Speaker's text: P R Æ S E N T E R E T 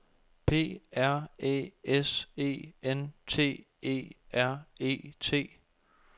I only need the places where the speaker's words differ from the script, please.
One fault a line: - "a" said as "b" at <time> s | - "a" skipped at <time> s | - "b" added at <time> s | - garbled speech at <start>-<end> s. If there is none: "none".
none